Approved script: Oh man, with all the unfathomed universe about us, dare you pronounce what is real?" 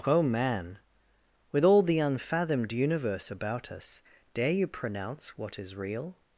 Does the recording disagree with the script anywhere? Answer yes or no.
no